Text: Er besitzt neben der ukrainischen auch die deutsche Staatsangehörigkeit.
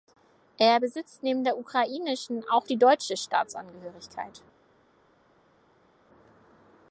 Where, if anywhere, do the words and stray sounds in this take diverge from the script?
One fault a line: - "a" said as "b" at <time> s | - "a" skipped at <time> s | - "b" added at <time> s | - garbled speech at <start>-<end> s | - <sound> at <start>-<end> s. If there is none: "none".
none